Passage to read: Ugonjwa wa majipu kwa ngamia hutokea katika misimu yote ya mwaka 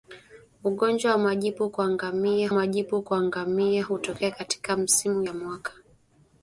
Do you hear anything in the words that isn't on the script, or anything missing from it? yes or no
yes